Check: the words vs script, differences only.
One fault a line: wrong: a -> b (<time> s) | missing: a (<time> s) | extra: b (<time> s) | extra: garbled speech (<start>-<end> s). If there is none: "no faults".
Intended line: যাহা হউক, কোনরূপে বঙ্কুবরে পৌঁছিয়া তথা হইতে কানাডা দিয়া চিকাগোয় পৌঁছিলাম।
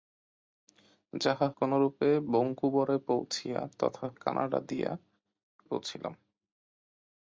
missing: হউক (1.5 s)
missing: হইতে (4.1 s)
missing: চিকাগোয় (4.9 s)